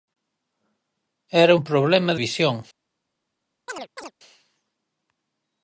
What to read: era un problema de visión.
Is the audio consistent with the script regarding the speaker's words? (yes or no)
no